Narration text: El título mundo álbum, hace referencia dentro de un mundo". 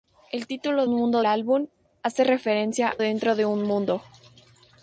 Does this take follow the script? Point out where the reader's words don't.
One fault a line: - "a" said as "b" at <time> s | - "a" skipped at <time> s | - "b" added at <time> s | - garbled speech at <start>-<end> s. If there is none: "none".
none